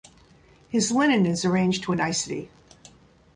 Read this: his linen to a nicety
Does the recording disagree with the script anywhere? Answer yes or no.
yes